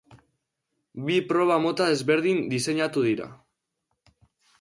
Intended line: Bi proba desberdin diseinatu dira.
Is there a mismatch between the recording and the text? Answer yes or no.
yes